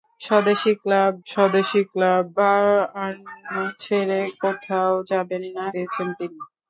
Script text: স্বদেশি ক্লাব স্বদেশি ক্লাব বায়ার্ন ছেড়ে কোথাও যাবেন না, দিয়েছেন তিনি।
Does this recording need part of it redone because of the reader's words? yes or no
no